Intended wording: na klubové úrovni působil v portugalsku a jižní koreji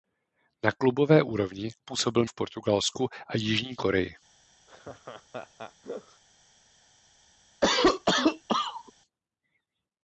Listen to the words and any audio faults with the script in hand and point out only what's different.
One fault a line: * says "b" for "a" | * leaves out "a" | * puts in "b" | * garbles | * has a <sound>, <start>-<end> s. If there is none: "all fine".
* has a laugh, 4.7-6.2 s
* has a cough, 7.6-8.9 s